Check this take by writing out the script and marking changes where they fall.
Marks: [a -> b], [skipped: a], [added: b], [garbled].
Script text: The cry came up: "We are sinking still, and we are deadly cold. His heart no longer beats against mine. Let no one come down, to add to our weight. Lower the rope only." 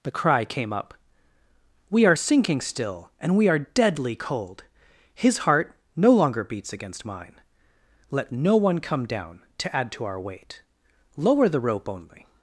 The cry came up: "We are sinking still, and we are deadly cold. His heart no longer beats against mine. Let no one come down, to add to our weight. Lower the rope only."